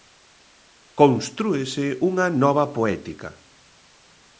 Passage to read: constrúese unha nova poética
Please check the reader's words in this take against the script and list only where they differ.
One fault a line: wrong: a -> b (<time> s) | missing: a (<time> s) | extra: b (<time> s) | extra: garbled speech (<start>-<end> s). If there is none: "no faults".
no faults